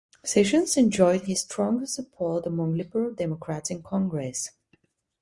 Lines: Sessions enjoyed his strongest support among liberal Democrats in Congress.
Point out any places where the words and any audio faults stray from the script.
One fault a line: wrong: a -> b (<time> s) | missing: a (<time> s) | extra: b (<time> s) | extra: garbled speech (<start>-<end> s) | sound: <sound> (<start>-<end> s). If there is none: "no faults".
no faults